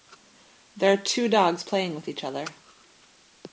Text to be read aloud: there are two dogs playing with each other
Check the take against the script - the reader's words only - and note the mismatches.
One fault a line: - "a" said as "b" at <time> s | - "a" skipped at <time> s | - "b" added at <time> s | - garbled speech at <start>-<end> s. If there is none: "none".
none